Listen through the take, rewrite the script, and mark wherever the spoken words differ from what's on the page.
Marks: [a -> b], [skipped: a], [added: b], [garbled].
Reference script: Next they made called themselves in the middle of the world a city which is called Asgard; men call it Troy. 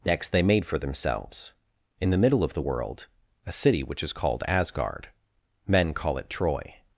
Next they made [called -> for] themselves in the middle of the world a city which is called Asgard; men call it Troy.